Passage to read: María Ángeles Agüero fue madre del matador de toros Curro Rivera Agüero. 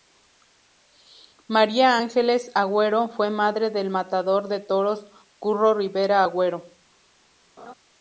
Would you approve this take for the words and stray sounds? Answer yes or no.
no